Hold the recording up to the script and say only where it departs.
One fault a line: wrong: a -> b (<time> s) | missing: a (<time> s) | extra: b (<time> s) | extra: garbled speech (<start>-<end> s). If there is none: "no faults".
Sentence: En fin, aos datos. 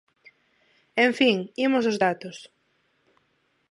extra: imos (1.6 s)